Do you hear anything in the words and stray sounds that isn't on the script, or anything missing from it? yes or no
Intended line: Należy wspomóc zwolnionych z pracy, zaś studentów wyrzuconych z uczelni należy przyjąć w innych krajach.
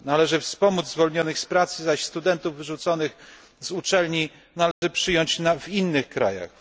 yes